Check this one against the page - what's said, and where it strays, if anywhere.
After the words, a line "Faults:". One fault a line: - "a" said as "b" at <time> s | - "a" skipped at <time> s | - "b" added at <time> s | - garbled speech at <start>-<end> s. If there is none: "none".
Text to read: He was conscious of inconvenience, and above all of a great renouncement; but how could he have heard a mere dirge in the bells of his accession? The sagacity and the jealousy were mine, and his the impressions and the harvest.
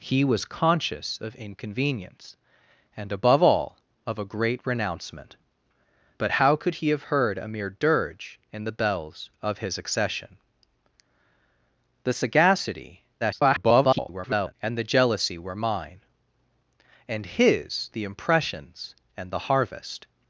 He was conscious of inconvenience, and above all of a great renouncement; but how could he have heard a mere dirge in the bells of his accession? The sagacity [garbled] and the jealousy were mine, and his the impressions and the harvest.
Faults:
- garbled speech at 13.2-14.5 s